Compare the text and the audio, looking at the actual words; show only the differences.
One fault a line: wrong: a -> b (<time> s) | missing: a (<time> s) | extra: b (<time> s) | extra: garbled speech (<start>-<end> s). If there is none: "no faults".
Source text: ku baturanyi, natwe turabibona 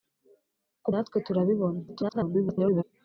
missing: baturanyi (0.9 s)
extra: garbled speech (1.9-2.8 s)